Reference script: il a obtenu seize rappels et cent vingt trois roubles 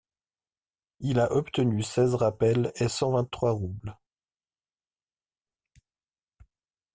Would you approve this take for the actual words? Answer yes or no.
yes